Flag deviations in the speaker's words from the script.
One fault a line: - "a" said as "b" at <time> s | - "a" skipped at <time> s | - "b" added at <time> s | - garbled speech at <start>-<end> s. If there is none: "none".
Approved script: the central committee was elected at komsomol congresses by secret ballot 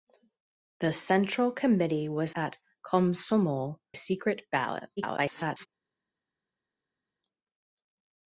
- "elected" skipped at 2.3 s
- "congresses by" skipped at 3.8 s
- garbled speech at 5.0-5.7 s